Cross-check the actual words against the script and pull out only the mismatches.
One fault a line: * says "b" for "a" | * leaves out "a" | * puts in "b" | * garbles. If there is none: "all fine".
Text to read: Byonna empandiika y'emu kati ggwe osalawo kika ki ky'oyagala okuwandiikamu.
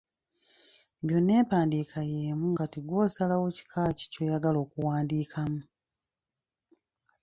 all fine